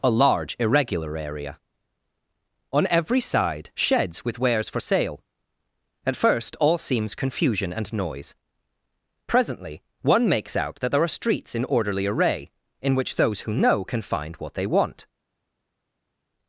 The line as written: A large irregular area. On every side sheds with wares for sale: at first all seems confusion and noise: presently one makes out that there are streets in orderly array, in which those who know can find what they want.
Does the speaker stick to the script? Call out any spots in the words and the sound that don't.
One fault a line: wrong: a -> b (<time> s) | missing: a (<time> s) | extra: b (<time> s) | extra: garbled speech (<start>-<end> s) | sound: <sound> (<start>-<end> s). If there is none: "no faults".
no faults